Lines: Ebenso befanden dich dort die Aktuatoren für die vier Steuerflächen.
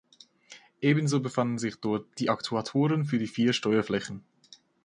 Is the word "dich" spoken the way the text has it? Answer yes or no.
no